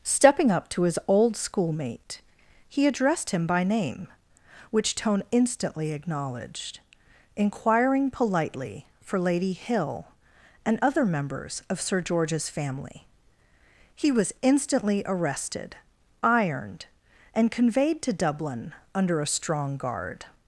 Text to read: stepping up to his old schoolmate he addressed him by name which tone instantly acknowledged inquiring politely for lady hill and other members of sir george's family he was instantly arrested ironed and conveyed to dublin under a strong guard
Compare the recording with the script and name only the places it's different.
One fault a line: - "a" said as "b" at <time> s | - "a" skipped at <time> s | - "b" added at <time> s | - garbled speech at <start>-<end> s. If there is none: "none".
none